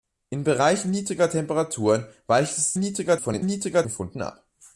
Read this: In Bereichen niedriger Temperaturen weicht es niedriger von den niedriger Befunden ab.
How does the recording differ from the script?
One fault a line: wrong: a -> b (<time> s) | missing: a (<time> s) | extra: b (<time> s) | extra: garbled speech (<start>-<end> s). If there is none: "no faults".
no faults